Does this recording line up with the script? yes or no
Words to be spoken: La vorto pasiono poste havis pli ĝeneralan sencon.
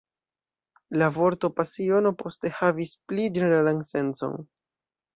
yes